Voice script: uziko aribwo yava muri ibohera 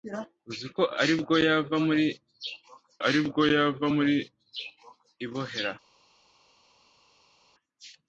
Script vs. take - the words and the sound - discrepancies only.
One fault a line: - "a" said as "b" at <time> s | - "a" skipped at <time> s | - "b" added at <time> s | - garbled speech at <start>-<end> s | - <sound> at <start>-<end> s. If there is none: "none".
- "aribwo yava muri" added at 3.1 s